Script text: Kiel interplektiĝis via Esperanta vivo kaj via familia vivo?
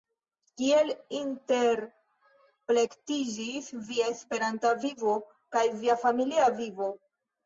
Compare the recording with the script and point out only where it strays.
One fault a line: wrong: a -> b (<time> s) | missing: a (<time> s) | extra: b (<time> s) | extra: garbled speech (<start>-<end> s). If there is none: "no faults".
no faults